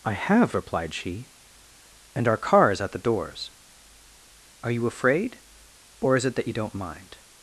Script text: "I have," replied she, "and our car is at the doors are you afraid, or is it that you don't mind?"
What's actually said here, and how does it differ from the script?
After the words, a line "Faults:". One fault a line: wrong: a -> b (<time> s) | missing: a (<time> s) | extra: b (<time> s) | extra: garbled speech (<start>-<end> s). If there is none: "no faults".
"I have," replied she, "and our car is at the doors are you afraid, or is it that you don't mind?"
Faults:
no faults